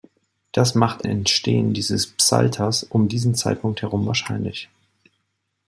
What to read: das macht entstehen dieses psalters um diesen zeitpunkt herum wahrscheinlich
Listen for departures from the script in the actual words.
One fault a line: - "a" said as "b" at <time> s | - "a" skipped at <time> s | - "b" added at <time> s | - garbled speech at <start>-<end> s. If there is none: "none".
none